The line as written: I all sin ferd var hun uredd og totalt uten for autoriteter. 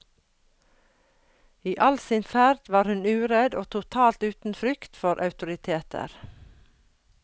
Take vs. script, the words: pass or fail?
fail